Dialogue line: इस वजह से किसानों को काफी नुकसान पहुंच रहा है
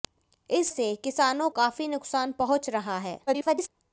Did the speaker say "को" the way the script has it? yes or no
no